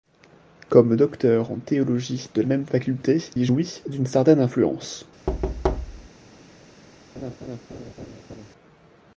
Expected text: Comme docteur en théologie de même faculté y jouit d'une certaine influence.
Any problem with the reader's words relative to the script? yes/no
no